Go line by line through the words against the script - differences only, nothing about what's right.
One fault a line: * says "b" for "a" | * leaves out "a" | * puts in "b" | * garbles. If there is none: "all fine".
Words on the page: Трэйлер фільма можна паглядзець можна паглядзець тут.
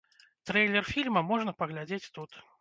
* leaves out "можна паглядзець"